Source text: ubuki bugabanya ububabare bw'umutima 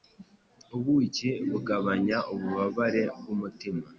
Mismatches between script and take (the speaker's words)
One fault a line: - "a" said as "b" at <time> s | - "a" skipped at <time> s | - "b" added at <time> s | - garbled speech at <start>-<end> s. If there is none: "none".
none